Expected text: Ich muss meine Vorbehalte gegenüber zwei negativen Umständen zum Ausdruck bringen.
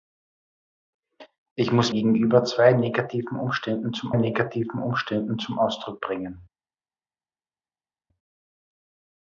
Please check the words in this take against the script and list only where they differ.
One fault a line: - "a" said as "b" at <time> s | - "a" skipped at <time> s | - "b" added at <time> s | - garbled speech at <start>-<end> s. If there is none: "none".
- "meine Vorbehalte gegenüber zwei" said as "gegenüber zwei negativen Umständen zum" at 1.9 s